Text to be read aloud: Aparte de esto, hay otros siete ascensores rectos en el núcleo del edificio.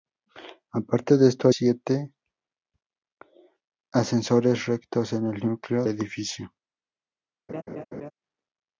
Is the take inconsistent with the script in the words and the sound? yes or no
yes